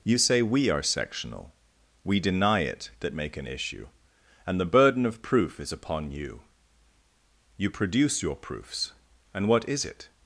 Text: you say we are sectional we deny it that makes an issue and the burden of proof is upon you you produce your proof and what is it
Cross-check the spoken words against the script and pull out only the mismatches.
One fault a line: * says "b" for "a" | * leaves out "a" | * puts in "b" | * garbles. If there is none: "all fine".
* says "make" for "makes"
* says "proofs" for "proof"